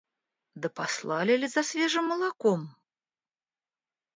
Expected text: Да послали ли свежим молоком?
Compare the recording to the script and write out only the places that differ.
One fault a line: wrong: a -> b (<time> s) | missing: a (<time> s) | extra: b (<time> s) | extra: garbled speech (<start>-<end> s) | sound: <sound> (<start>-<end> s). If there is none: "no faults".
extra: за (1.5 s)